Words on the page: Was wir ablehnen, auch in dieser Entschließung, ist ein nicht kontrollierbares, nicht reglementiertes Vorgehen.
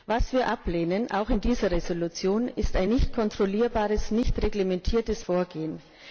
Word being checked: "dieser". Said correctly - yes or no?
yes